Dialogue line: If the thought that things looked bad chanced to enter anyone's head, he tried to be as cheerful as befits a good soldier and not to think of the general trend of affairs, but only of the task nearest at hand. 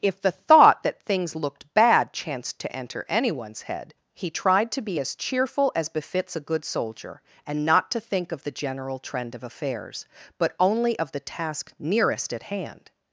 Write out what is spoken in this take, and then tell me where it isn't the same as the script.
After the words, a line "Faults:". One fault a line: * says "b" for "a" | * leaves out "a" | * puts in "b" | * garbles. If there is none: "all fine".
If the thought that things looked bad chanced to enter anyone's head, he tried to be as cheerful as befits a good soldier and not to think of the general trend of affairs, but only of the task nearest at hand.
Faults:
all fine